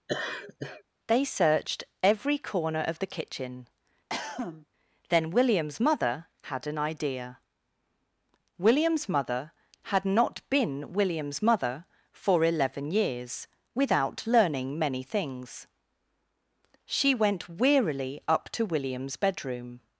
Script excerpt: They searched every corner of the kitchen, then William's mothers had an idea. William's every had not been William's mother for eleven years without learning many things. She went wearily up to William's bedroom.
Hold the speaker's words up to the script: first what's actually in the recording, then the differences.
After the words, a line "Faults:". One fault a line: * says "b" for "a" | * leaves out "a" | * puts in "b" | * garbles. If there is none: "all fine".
They searched every corner of the kitchen, then William's mother had an idea. William's mother had not been William's mother for eleven years without learning many things. She went wearily up to William's bedroom.
Faults:
* says "mother" for "mothers"
* says "mother" for "every"